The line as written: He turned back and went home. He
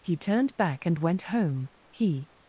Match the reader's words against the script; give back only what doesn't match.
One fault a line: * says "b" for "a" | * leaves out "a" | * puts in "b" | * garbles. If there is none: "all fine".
all fine